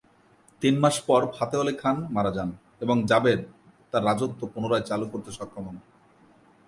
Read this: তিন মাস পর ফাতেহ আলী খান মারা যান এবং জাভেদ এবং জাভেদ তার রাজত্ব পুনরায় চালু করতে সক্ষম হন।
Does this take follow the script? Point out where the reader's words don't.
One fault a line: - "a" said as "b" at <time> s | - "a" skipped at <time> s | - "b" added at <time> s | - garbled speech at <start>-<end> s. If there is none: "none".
- "এবং জাভেদ" skipped at 3.4 s